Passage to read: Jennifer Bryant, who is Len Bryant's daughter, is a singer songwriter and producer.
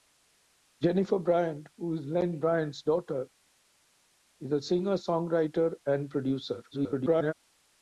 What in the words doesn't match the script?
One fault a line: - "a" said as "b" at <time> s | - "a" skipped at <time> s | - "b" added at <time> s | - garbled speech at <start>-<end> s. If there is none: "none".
- garbled speech at 6.7-7.3 s